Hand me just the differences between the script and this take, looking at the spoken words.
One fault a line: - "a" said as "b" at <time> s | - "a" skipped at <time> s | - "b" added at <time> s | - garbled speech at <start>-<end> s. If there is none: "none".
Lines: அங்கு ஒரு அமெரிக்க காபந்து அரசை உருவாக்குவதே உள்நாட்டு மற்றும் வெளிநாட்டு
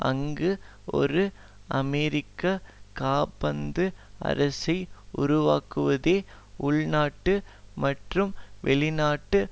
none